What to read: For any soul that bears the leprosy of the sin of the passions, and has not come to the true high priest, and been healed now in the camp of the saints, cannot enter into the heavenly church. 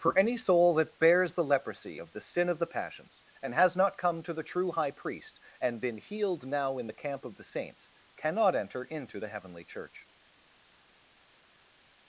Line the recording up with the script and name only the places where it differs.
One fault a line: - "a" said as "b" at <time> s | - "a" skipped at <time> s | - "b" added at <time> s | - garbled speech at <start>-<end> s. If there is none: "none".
none